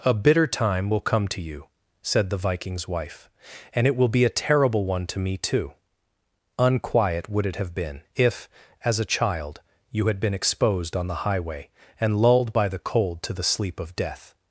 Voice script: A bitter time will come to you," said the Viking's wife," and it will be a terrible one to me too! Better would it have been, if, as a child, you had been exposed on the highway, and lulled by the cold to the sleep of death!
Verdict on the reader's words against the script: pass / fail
fail